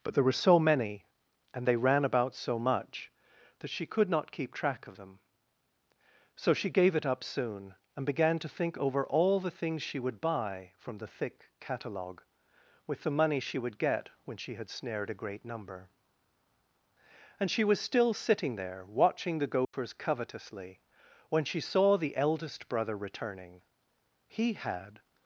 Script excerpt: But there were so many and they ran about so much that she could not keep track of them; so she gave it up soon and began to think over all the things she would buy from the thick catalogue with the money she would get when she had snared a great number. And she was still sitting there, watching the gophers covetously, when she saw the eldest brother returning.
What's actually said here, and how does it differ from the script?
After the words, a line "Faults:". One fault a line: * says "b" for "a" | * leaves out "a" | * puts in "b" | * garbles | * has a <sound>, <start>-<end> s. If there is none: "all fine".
But there were so many and they ran about so much that she could not keep track of them; so she gave it up soon and began to think over all the things she would buy from the thick catalogue with the money she would get when she had snared a great number. And she was still sitting there, watching the gophers covetously, when she saw the eldest brother returning. He had
Faults:
* has a dropout, 19.6-19.7 s
* puts in "He had"